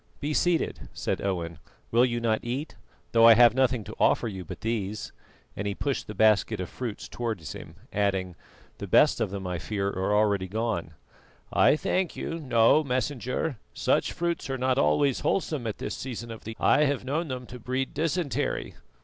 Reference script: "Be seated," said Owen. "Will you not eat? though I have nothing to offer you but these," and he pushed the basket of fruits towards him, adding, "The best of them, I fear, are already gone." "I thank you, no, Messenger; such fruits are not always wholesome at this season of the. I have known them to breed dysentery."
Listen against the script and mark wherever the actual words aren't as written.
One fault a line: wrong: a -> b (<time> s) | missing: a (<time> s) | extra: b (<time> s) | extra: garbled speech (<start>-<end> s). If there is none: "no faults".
no faults